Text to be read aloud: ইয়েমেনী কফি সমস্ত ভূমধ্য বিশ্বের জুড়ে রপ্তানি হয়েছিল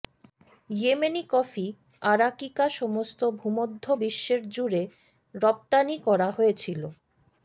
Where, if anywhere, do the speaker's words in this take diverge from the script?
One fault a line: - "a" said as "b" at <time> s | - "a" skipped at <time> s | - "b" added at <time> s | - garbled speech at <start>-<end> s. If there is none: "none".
- "আরাকিকা" added at 2.0 s
- "করা" added at 6.1 s